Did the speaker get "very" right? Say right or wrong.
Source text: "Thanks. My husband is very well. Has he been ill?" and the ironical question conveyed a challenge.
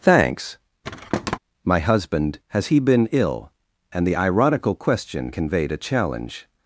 wrong